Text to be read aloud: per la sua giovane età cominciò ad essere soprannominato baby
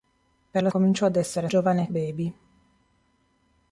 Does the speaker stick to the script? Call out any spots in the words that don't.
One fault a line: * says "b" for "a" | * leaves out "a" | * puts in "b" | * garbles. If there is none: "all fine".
* leaves out "sua giovane età"
* says "giovane" for "soprannominato"